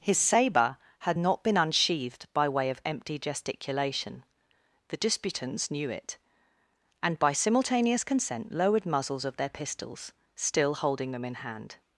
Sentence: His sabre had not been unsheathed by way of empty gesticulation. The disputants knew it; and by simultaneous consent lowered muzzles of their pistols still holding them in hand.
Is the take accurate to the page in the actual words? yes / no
yes